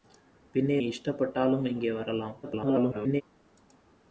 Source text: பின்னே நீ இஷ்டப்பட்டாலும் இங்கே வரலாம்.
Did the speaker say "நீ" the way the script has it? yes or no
no